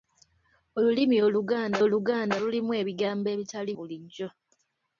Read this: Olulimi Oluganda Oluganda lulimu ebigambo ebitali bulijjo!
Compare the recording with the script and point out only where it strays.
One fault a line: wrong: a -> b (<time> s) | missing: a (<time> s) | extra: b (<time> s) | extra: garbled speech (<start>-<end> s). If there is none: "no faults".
no faults